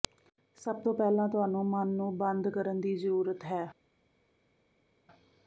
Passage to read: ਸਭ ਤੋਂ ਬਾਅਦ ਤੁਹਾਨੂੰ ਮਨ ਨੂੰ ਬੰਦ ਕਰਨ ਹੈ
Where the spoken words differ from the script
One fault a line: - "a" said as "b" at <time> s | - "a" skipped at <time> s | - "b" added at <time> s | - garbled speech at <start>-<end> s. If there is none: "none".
- "ਬਾਅਦ" said as "ਪਹਿਲਾਂ" at 0.9 s
- "ਦੀ ਜ਼ਰੂਰਤ" added at 2.8 s